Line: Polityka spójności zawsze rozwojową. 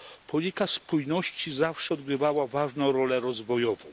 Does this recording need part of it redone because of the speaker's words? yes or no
yes